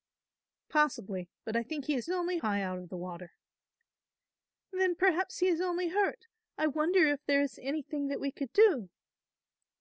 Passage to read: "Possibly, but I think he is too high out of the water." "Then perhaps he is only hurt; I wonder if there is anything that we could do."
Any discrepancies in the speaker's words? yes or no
yes